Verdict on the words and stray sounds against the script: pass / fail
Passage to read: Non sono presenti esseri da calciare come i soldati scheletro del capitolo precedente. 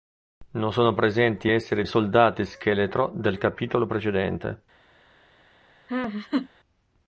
fail